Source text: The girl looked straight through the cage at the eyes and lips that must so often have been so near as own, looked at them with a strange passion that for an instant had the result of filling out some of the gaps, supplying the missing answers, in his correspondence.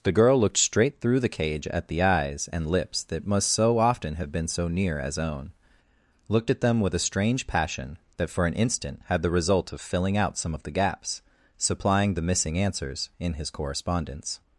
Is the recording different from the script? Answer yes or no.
no